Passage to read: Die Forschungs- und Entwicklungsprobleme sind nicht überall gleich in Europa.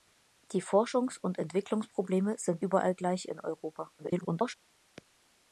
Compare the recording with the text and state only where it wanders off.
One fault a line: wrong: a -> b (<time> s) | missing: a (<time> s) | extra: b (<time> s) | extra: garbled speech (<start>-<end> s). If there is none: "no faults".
missing: nicht (2.6 s)
extra: garbled speech (4.0-4.6 s)